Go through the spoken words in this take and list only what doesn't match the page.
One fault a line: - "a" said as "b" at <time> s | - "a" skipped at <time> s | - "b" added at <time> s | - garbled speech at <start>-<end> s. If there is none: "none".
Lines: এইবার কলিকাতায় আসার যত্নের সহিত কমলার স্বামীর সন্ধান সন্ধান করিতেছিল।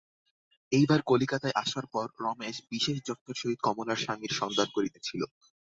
- "পর রমেশ বিশেষ" added at 1.9 s
- "সন্ধান" skipped at 4.7 s